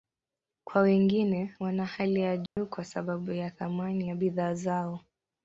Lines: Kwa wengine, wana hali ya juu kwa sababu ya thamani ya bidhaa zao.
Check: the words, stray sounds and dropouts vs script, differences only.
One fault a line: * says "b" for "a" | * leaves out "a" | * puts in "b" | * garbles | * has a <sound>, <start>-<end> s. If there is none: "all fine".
* has a dropout, 2.5-2.6 s